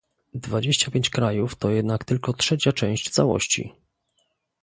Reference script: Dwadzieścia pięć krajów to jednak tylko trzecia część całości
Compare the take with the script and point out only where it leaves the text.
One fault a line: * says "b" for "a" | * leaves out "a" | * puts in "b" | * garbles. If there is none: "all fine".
all fine